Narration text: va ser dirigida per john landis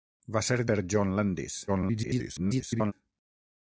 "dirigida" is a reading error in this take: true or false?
true